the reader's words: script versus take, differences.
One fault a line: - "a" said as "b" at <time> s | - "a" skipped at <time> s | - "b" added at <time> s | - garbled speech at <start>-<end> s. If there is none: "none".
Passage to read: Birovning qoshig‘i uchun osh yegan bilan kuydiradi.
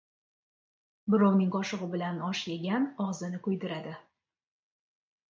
- "uchun" said as "bilan" at 1.9 s
- "bilan" said as "og‘zini" at 3.1 s